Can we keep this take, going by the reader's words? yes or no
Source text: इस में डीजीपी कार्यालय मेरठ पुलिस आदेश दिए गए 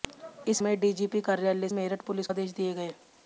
yes